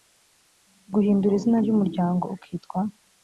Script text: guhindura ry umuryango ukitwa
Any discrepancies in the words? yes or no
yes